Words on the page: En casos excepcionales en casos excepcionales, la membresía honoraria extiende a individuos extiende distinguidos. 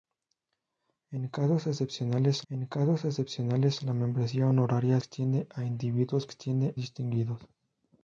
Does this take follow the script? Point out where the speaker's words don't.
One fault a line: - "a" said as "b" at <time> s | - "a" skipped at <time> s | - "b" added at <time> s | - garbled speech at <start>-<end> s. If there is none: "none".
none